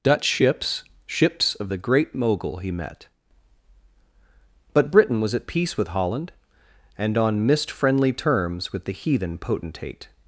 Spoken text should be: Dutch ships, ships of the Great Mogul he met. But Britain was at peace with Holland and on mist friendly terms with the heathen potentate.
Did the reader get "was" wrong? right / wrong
right